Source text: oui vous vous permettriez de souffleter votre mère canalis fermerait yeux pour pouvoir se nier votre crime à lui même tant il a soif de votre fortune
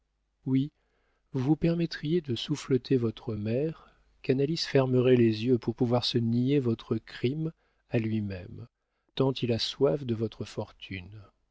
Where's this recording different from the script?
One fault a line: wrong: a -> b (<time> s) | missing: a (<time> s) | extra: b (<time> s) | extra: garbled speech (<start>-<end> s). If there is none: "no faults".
extra: les (5.2 s)